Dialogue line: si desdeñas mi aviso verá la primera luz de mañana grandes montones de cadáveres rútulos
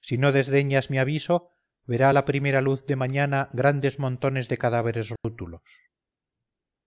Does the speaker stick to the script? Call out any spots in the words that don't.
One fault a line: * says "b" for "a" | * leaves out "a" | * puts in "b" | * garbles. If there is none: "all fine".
* puts in "no"